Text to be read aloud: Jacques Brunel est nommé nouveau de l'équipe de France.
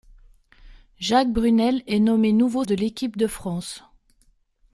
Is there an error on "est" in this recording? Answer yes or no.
no